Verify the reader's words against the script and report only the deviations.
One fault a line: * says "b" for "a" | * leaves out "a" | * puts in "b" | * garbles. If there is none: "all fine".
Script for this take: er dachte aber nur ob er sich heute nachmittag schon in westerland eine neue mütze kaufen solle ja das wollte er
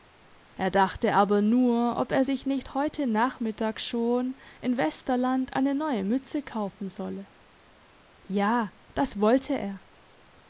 * puts in "nicht"